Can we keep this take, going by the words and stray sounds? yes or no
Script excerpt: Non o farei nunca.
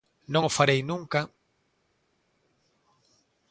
yes